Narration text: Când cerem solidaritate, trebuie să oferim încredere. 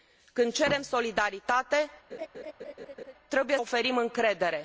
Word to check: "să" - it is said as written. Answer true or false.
false